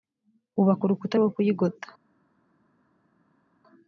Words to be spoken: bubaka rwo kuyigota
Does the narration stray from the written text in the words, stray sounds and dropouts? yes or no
yes